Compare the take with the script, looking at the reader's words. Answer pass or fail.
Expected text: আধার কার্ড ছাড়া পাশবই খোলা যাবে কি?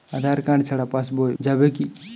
fail